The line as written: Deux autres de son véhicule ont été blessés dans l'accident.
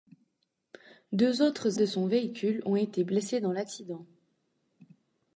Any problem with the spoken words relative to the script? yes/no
no